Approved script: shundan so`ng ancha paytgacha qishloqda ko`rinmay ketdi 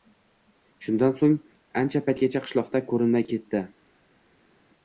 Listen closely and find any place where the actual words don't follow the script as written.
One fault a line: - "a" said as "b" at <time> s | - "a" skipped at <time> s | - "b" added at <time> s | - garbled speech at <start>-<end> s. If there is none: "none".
none